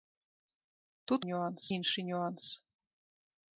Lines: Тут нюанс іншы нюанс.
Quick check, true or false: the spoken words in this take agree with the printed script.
true